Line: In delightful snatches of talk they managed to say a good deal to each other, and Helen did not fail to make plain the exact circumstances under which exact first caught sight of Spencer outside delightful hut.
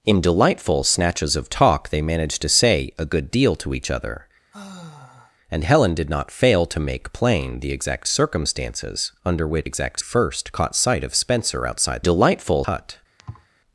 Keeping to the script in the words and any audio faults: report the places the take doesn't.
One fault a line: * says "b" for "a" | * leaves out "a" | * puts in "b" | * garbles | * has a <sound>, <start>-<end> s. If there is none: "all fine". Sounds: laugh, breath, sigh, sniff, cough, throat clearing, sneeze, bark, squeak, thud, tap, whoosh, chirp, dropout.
* has a sigh, 4.5-5.4 s
* has a thud, 13.2-13.5 s